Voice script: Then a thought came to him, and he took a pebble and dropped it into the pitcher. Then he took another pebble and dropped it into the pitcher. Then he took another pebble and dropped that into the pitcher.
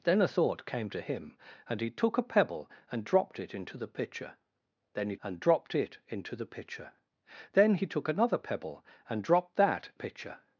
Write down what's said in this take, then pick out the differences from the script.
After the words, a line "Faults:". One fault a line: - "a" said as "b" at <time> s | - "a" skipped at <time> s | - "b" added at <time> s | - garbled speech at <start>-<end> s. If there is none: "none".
Then a thought came to him, and he took a pebble and dropped it into the pitcher. Then he and dropped it into the pitcher. Then he took another pebble and dropped that pitcher.
Faults:
- "took another pebble" skipped at 5.2 s
- "into the" skipped at 9.9 s